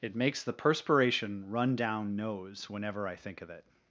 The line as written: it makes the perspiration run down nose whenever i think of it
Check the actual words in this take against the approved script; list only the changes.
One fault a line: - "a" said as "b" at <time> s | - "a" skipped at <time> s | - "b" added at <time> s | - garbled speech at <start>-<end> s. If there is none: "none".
none